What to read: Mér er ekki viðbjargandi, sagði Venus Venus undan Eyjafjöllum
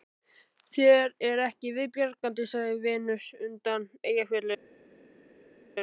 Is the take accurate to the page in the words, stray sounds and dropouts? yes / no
no